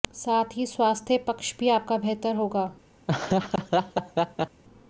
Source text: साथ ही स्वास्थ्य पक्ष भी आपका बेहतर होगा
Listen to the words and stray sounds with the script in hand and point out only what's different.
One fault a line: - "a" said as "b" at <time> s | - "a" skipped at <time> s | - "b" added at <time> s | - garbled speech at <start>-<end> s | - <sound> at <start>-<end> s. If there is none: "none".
- laugh at 3.1-4.6 s